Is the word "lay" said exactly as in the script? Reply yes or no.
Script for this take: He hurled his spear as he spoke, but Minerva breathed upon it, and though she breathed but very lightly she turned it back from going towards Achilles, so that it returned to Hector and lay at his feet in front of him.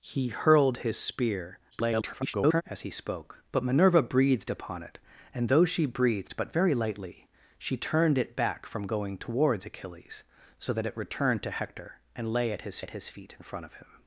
yes